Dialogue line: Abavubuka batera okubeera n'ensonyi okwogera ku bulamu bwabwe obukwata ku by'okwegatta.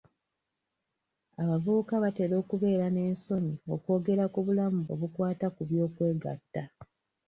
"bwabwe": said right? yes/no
no